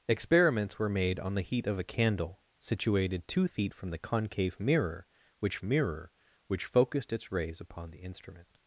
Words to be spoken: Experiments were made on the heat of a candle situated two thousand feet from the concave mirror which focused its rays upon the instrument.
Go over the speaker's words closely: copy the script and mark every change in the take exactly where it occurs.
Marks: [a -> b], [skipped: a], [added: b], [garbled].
Experiments were made on the heat of a candle situated two [skipped: thousand] feet from the concave mirror which [added: mirror which] focused its rays upon the instrument.